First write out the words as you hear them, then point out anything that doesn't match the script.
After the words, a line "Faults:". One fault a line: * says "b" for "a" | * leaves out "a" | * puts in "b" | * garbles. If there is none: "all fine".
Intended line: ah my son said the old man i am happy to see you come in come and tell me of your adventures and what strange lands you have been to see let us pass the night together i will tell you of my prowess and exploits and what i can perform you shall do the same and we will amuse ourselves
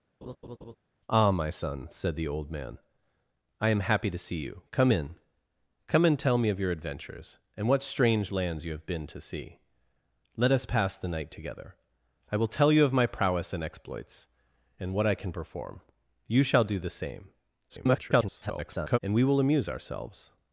ah my son said the old man i am happy to see you come in come and tell me of your adventures and what strange lands you have been to see let us pass the night together i will tell you of my prowess and exploits and what i can perform you shall do the same [garbled] and we will amuse ourselves
Faults:
* garbles